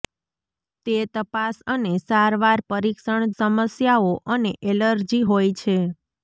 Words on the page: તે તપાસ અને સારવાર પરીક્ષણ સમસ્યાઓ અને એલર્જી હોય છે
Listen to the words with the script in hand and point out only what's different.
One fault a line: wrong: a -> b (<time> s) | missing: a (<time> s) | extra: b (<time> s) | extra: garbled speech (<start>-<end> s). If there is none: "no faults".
no faults